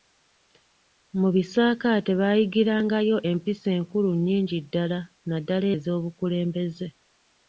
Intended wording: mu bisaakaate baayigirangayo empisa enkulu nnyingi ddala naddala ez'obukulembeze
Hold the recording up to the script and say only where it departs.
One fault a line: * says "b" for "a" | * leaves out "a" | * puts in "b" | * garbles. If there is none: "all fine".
all fine